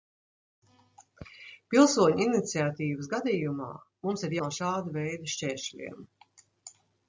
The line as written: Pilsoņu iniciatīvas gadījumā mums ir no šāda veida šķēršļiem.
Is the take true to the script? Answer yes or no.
yes